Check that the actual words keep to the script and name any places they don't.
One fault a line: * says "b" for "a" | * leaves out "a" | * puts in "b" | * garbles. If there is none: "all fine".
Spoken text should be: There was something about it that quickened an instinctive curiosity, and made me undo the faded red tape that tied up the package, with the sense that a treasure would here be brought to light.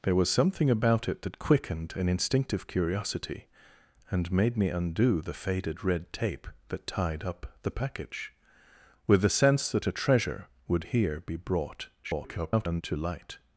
* garbles